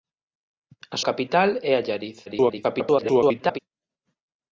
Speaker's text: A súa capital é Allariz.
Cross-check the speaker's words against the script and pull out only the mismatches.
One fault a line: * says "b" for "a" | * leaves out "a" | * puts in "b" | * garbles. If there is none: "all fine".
* leaves out "súa"
* garbles